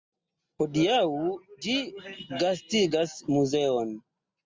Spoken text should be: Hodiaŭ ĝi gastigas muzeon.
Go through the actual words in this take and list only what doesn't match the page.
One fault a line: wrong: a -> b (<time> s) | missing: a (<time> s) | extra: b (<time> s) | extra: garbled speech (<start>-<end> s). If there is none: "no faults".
no faults